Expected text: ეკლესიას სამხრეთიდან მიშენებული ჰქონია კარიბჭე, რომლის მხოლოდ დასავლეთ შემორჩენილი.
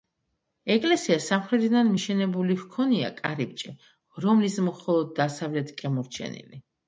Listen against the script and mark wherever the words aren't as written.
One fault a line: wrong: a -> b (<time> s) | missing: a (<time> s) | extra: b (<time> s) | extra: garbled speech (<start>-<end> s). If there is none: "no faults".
no faults